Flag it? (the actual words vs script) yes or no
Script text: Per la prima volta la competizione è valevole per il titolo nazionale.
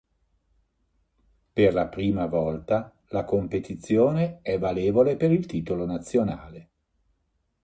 no